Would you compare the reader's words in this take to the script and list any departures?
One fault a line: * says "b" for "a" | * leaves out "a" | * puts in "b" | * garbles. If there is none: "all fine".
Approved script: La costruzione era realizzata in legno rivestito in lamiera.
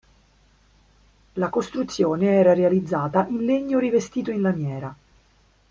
all fine